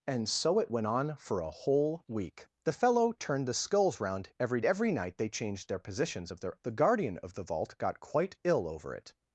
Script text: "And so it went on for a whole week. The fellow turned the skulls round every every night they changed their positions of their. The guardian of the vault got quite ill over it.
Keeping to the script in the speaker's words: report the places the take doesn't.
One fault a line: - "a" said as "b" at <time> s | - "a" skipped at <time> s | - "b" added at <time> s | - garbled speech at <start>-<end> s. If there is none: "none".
none